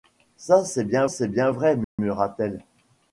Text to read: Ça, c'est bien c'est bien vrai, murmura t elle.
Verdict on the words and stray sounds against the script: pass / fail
fail